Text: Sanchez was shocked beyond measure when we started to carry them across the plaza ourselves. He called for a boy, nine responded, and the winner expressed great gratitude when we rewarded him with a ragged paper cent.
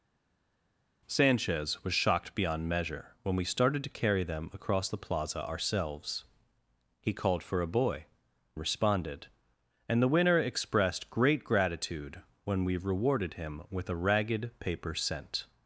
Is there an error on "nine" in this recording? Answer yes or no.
yes